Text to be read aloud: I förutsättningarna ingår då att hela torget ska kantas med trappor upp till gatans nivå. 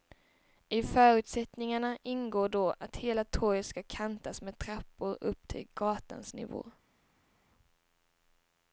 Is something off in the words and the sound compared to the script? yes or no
no